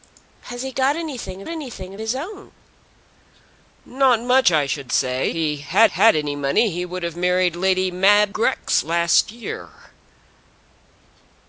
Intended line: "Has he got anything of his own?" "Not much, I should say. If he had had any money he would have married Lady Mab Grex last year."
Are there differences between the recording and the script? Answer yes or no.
yes